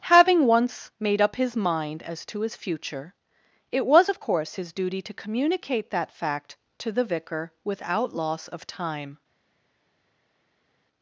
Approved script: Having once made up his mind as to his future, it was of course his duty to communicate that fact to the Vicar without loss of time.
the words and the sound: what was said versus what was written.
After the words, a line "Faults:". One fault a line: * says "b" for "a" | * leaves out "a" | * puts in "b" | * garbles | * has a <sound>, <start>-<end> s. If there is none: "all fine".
Having once made up his mind as to his future, it was of course his duty to communicate that fact to the Vicar without loss of time.
Faults:
all fine